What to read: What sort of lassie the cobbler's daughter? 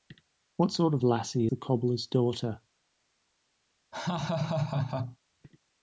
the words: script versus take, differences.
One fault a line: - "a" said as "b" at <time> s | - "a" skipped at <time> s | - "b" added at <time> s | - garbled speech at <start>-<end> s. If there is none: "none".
none